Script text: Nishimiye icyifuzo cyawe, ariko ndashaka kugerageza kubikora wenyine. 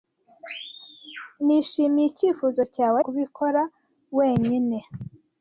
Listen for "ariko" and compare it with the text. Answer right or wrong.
wrong